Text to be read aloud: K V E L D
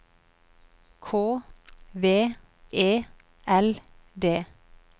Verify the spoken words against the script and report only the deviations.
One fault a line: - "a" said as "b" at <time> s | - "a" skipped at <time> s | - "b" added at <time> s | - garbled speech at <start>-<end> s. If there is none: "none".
none